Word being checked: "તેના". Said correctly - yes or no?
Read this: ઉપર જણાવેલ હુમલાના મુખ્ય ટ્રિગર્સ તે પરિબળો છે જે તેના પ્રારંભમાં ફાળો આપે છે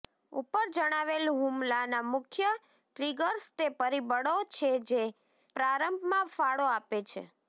no